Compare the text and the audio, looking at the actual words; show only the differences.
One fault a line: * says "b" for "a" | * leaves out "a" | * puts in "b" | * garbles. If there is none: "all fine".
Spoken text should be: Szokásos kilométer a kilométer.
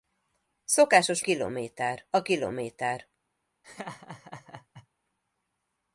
all fine